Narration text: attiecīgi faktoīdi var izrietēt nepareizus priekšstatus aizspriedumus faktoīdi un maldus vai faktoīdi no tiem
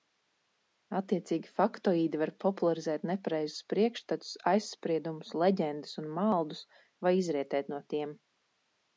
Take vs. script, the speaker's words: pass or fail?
fail